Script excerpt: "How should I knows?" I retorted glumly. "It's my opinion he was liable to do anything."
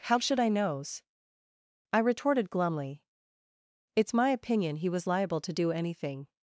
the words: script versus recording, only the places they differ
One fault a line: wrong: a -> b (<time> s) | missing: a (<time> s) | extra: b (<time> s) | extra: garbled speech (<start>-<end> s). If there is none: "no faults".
no faults